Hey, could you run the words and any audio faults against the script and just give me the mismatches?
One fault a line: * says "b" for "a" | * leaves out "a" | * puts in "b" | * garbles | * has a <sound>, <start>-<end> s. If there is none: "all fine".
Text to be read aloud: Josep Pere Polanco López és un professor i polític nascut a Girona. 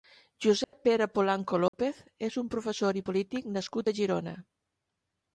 * has a dropout, 0.6-0.7 s
* has a dropout, 1.7-1.7 s